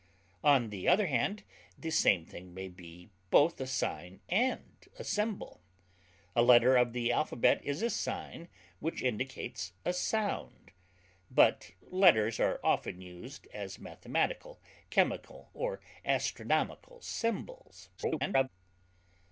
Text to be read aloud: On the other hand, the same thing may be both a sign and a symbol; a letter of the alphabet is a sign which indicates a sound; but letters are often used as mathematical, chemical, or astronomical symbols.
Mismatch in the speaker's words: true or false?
true